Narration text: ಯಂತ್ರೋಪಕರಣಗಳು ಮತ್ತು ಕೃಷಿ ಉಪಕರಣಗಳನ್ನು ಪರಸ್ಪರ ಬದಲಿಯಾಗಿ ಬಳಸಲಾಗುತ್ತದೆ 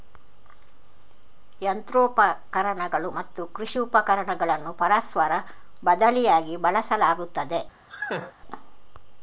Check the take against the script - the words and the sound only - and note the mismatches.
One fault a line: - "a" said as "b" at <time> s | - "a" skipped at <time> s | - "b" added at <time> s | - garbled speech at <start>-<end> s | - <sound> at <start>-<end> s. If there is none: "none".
- laugh at 7.9-8.3 s